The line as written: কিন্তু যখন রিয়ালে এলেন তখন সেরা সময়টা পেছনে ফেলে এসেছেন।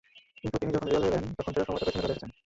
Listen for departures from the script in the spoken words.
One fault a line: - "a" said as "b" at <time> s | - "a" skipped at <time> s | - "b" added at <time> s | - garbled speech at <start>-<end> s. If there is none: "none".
- "তিনি" added at 0.6 s